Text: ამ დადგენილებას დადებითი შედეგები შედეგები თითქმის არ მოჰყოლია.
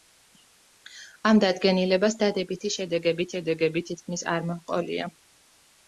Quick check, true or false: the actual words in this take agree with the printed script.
true